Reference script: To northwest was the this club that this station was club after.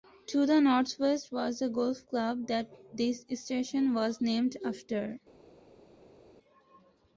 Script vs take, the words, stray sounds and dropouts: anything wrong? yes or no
yes